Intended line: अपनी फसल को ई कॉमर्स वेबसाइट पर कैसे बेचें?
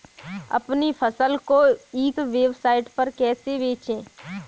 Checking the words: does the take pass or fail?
fail